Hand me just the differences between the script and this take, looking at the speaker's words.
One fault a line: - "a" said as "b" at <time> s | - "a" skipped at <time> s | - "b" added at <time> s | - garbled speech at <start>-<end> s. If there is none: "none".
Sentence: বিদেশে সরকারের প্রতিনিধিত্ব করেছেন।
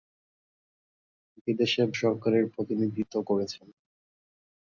none